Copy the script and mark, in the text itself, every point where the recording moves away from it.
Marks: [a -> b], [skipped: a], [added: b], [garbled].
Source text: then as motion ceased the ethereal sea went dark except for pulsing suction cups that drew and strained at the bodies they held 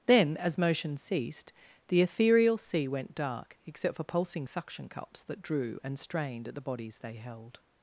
then as motion ceased the ethereal sea went dark except for pulsing suction cups that drew and strained at the bodies they held